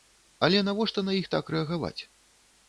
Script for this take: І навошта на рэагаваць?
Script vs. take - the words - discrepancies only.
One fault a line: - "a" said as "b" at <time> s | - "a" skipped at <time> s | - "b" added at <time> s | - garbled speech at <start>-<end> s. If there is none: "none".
- "І" said as "Але" at 0.5 s
- "іх так" added at 1.2 s